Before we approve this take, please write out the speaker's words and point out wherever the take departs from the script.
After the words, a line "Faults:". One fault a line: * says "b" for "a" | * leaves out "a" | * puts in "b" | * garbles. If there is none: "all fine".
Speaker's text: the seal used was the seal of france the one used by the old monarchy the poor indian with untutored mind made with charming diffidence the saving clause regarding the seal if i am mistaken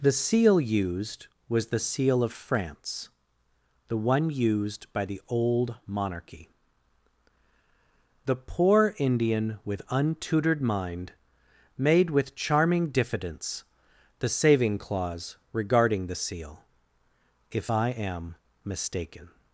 the seal used was the seal of france the one used by the old monarchy the poor indian with untutored mind made with charming diffidence the saving clause regarding the seal if i am mistaken
Faults:
all fine